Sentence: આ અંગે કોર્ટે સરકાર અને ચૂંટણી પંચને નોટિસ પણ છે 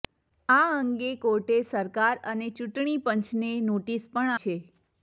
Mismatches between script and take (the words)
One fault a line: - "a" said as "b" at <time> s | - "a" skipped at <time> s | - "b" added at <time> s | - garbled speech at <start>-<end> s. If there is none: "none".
none